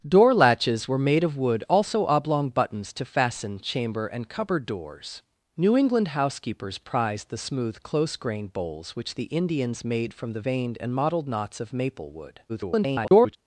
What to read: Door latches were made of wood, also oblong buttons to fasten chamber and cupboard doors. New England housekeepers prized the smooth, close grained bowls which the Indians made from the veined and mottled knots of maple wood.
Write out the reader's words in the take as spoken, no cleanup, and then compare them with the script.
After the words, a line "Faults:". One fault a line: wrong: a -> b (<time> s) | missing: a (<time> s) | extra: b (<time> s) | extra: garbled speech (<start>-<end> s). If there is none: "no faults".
Door latches were made of wood, also oblong buttons to fasten chamber and cupboard doors. New England housekeepers prized the smooth, close grained bowls which the Indians made from the veined and mottled knots of maple wood. [garbled]
Faults:
extra: garbled speech (12.5-13.4 s)